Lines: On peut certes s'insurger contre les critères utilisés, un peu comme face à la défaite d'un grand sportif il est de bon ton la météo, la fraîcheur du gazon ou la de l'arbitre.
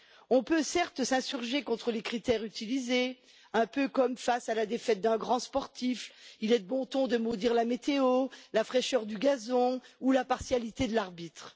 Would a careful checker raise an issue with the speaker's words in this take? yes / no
yes